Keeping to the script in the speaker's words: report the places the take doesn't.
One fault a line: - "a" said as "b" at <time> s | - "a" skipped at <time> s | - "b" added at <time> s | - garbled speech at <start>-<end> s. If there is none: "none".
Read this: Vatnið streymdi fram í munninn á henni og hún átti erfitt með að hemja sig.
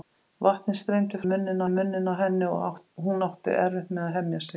- "fram" said as "munninn" at 1.3 s